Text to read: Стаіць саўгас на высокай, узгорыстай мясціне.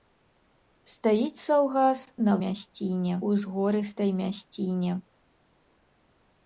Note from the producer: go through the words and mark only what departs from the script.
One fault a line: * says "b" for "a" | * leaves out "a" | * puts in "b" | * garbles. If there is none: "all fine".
* says "мясціне" for "высокай"